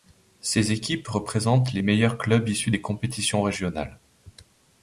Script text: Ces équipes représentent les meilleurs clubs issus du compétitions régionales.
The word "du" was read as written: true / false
false